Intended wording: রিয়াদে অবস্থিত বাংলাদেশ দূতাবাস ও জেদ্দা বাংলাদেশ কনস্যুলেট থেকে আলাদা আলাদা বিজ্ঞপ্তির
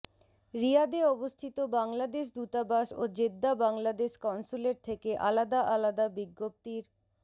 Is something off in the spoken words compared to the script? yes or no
no